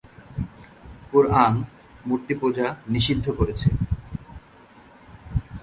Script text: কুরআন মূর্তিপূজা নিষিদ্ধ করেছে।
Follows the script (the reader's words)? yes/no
yes